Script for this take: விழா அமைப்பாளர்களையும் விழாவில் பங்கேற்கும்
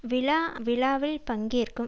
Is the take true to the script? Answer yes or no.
no